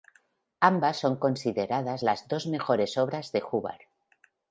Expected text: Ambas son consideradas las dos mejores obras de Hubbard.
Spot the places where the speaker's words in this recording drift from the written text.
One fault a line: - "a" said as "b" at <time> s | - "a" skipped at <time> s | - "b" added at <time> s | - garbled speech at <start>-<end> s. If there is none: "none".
none